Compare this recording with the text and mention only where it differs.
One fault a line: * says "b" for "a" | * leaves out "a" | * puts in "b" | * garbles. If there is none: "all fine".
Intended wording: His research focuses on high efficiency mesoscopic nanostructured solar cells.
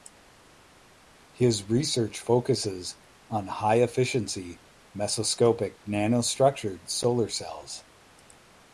all fine